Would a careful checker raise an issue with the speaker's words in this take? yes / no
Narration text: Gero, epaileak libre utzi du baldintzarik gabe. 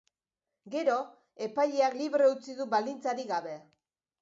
no